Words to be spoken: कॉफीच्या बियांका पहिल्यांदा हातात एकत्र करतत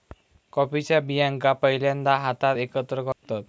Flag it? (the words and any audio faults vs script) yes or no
yes